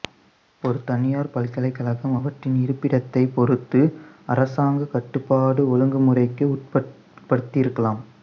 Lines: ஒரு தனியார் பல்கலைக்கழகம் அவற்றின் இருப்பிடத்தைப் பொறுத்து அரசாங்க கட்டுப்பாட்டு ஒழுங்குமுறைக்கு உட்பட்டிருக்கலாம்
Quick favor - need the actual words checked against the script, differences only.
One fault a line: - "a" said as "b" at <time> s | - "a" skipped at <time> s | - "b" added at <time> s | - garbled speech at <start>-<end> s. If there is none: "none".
none